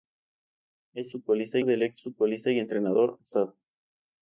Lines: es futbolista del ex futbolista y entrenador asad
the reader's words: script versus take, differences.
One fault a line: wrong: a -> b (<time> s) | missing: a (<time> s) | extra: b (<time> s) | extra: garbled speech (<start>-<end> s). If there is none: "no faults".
no faults